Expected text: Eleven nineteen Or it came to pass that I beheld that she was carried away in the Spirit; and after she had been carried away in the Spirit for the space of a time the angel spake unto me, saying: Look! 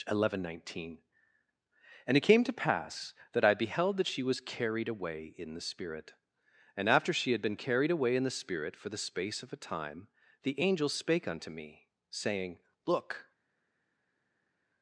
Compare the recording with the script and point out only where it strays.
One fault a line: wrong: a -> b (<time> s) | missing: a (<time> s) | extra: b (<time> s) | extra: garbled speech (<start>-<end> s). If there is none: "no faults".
wrong: Or -> And (2.1 s)